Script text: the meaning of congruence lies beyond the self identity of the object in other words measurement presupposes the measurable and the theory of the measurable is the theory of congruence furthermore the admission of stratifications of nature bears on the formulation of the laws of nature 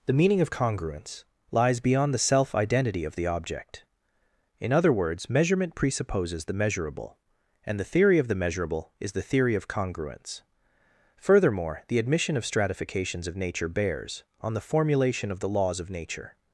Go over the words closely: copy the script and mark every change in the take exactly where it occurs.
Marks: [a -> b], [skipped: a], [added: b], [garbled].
the meaning of congruence lies beyond the self identity of the object in other words measurement presupposes the measurable and the theory of the measurable is the theory of congruence furthermore the admission of stratifications of nature bears on the formulation of the laws of nature